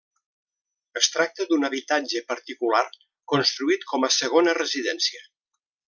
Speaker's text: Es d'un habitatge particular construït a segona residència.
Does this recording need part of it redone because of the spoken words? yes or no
yes